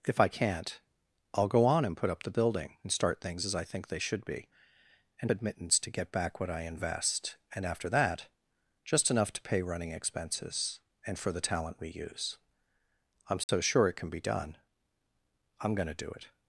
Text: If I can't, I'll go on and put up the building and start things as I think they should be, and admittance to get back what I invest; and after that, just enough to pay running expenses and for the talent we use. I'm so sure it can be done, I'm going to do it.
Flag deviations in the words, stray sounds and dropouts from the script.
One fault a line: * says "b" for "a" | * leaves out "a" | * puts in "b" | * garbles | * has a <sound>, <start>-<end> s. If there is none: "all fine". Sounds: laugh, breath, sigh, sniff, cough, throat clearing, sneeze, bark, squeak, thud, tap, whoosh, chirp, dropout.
* has a dropout, 13.4-13.5 s